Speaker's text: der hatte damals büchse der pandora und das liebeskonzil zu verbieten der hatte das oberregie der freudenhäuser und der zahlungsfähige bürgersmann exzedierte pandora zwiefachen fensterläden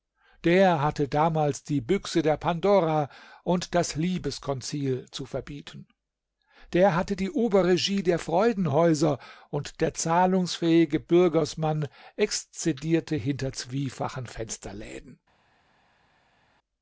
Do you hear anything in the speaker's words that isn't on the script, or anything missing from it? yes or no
yes